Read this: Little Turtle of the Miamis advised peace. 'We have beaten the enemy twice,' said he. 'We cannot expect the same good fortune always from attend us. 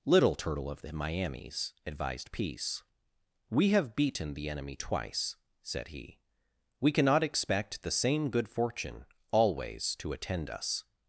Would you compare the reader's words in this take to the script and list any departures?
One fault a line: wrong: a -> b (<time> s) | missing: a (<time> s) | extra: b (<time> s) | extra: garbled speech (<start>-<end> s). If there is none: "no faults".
wrong: from -> to (10.0 s)